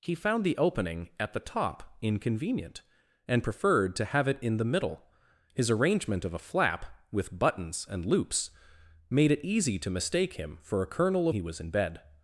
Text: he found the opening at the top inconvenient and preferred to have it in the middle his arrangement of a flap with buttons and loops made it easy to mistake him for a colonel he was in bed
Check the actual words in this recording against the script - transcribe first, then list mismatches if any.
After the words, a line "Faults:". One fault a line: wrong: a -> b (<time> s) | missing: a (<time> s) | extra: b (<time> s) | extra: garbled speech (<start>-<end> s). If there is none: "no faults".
he found the opening at the top inconvenient and preferred to have it in the middle his arrangement of a flap with buttons and loops made it easy to mistake him for a colonel he was in bed
Faults:
no faults